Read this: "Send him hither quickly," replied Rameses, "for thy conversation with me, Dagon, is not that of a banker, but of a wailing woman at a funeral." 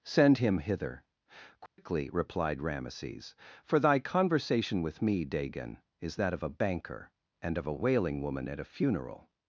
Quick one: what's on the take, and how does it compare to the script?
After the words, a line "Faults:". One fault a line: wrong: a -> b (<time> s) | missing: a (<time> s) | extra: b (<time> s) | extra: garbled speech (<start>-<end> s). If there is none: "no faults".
"Send him hither quickly," replied Rameses, "for thy conversation with me, Dagon, is that of a banker, and of a wailing woman at a funeral."
Faults:
missing: not (6.2 s)
wrong: but -> and (7.4 s)